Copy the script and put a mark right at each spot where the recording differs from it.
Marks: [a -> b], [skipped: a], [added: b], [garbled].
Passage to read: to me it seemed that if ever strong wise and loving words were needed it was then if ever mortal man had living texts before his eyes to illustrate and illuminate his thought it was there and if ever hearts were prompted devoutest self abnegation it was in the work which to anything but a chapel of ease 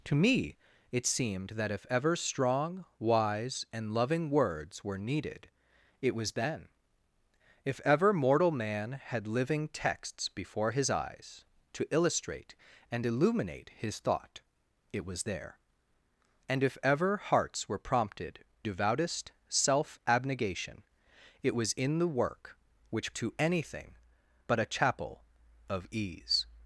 to me it seemed that if ever strong wise and loving words were needed it was then if ever mortal man had living texts before his eyes to illustrate and illuminate his thought it was there and if ever hearts were prompted devoutest self abnegation it was in the work which to anything but a chapel of ease